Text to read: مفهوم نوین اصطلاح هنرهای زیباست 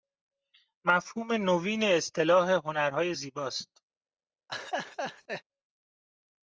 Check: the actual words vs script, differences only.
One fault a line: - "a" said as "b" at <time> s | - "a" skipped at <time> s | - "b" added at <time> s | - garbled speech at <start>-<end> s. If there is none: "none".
none